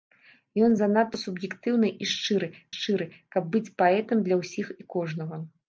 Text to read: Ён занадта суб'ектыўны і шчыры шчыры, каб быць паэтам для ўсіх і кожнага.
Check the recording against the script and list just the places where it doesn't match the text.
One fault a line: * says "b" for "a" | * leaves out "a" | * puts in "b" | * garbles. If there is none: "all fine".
all fine